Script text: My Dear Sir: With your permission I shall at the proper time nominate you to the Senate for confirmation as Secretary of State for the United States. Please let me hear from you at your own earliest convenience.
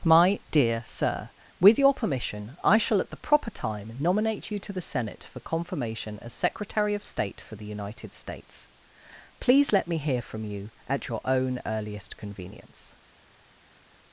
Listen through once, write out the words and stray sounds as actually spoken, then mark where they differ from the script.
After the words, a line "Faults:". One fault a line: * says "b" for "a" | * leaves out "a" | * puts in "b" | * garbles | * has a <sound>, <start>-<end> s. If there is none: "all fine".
My Dear Sir: With your permission I shall at the proper time nominate you to the Senate for confirmation as Secretary of State for the United States. Please let me hear from you at your own earliest convenience.
Faults:
all fine